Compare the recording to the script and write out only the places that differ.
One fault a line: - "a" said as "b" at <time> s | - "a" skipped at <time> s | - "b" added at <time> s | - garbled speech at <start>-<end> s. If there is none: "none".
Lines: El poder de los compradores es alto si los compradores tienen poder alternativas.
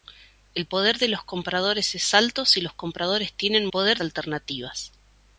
none